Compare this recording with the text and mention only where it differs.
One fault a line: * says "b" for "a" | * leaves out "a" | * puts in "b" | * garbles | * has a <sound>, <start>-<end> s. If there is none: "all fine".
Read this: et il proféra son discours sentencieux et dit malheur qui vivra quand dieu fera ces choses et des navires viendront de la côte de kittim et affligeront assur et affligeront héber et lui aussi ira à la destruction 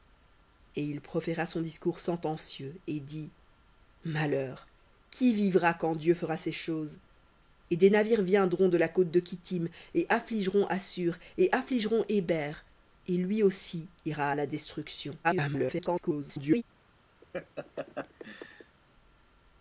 * garbles
* has a laugh, 17.2-18.8 s